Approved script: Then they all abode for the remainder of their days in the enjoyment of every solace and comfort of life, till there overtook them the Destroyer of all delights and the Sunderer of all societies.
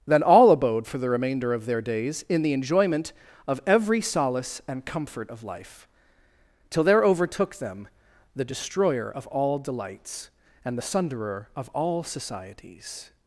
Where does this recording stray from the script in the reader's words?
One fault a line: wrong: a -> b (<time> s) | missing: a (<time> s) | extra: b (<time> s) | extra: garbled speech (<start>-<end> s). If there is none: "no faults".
missing: they (0.2 s)